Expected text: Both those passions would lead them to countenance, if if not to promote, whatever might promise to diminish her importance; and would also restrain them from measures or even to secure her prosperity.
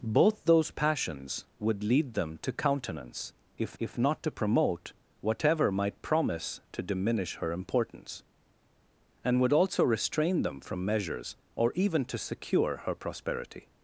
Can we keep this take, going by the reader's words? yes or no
yes